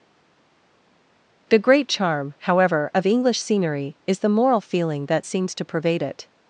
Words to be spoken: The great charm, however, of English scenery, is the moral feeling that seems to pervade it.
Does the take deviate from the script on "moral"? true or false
false